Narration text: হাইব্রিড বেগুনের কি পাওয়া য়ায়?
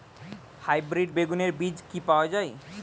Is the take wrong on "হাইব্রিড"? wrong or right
right